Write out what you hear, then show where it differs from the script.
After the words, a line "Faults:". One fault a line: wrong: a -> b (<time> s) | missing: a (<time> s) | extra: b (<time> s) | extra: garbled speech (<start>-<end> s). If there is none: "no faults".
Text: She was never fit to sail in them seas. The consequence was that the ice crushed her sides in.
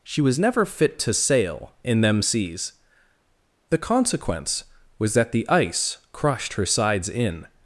She was never fit to sail in them seas. The consequence was that the ice crushed her sides in.
Faults:
no faults